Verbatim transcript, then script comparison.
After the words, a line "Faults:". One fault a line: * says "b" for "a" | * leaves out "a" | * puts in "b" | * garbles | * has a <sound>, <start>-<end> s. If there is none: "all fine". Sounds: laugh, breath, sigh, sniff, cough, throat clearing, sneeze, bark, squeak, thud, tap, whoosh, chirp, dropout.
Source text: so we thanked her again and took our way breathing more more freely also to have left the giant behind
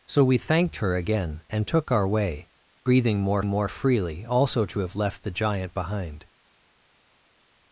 so we thanked her again and took our way breathing more more freely also to have left the giant behind
Faults:
all fine